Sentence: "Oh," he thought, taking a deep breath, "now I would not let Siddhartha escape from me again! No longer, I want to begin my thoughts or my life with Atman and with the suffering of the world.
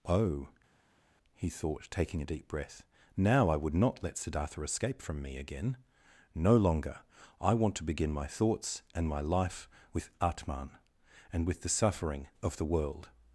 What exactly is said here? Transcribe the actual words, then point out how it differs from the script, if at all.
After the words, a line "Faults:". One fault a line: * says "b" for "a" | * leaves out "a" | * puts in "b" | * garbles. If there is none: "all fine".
"Oh," he thought, taking a deep breath, "now I would not let Siddhartha escape from me again! No longer, I want to begin my thoughts and my life with Atman and with the suffering of the world.
Faults:
* says "and" for "or"